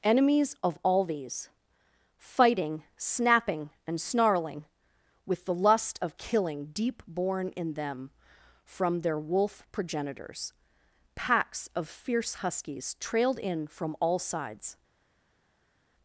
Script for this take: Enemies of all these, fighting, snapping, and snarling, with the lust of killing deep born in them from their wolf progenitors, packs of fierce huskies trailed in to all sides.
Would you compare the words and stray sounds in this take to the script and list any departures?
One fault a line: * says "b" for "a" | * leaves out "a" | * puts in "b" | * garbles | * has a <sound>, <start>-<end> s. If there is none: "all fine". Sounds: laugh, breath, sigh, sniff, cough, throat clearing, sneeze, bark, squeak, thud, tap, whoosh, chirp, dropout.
* says "from" for "to"